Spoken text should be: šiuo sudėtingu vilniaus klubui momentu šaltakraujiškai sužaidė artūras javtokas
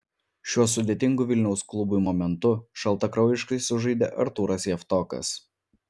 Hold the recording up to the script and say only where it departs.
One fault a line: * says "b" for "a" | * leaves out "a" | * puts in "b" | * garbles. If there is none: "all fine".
all fine